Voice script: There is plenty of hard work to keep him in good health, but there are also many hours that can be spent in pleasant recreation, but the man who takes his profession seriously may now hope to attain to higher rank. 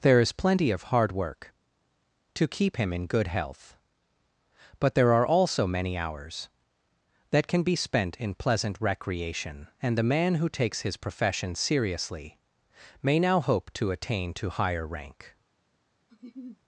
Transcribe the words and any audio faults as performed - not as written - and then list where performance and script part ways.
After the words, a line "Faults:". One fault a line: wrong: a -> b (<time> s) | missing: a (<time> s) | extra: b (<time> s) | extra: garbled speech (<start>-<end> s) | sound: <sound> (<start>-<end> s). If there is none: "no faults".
There is plenty of hard work to keep him in good health, but there are also many hours that can be spent in pleasant recreation, and the man who takes his profession seriously may now hope to attain to higher rank.
Faults:
wrong: but -> and (9.8 s)
sound: laugh (16.1-16.6 s)